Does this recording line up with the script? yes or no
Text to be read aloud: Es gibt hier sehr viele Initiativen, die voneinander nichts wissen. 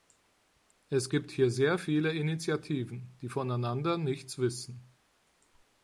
yes